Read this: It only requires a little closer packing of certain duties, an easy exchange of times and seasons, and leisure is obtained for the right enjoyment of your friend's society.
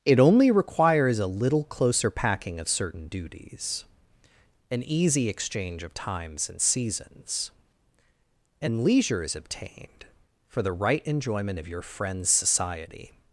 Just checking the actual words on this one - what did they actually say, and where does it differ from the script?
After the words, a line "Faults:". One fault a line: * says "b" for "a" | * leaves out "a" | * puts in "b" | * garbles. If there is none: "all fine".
It only requires a little closer packing of certain duties, an easy exchange of times and seasons, and leisure is obtained for the right enjoyment of your friend's society.
Faults:
all fine